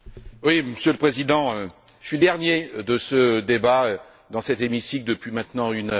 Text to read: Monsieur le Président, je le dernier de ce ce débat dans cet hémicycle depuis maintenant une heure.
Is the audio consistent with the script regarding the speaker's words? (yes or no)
no